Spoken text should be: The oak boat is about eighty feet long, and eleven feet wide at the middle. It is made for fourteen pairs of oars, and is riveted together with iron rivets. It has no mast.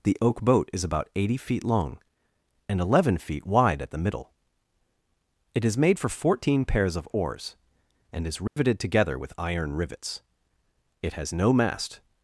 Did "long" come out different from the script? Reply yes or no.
no